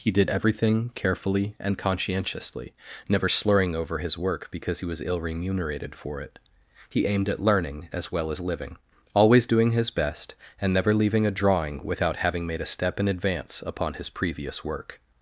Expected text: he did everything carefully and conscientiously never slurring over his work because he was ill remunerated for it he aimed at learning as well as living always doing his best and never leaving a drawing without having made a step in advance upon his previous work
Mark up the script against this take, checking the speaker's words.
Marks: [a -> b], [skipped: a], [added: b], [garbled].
he did everything carefully and conscientiously never slurring over his work because he was ill remunerated for it he aimed at learning as well as living always doing his best and never leaving a drawing without having made a step in advance upon his previous work